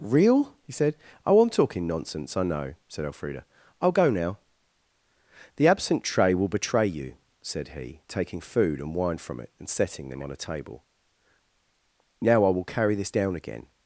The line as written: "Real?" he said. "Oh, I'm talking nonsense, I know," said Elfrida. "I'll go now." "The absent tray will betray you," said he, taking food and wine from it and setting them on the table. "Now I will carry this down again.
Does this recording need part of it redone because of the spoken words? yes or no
yes